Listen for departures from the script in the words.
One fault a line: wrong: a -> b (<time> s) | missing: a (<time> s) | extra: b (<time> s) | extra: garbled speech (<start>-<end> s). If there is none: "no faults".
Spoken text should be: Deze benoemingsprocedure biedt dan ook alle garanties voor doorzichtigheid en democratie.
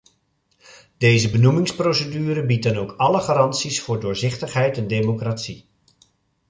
no faults